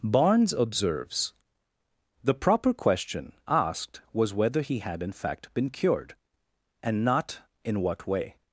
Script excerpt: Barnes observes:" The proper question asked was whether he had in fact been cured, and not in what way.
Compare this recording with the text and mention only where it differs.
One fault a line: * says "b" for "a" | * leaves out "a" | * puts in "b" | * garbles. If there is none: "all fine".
all fine